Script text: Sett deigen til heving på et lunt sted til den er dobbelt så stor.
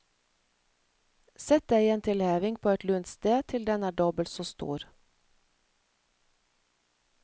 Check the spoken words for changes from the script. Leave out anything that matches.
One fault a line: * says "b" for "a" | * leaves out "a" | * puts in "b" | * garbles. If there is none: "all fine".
all fine